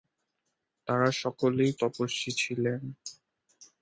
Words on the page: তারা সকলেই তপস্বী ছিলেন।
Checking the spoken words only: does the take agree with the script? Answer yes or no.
yes